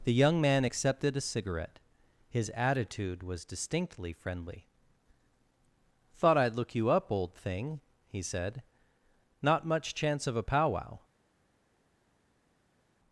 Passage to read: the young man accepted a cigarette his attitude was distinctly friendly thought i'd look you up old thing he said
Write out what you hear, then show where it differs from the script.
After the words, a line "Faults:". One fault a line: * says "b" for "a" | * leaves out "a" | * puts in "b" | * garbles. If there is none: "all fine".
the young man accepted a cigarette his attitude was distinctly friendly thought i'd look you up old thing he said not much chance of a powwow
Faults:
* puts in "not much chance of a powwow"